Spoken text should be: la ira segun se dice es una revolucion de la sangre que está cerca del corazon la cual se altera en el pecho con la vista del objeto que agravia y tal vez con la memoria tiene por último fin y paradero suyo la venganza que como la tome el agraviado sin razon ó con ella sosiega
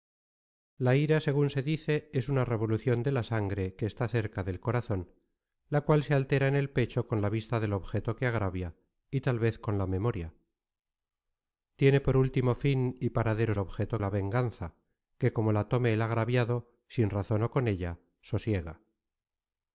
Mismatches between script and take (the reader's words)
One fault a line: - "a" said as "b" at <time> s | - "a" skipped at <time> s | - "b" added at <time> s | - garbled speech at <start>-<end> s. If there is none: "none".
- "suyo" said as "objeto" at 13.6 s